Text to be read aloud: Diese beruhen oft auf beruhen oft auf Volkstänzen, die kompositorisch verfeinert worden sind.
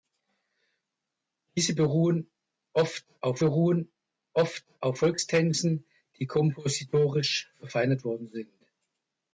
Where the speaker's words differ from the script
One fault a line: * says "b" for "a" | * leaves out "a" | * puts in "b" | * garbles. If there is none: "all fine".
all fine